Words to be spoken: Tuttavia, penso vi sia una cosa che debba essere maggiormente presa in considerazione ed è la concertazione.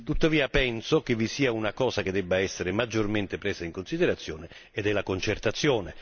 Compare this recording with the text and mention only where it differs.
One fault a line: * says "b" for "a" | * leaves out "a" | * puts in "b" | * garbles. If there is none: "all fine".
* puts in "che"